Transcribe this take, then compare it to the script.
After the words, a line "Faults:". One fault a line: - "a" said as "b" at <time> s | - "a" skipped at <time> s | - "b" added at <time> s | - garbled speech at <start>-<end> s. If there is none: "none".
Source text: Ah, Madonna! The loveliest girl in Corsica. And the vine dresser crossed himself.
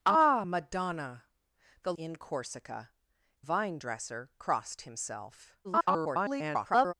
Ah, Madonna! The in Corsica. Vine dresser crossed himself. [garbled]
Faults:
- "loveliest girl" skipped at 1.9 s
- "And the" skipped at 2.9 s
- garbled speech at 5.6-6.9 s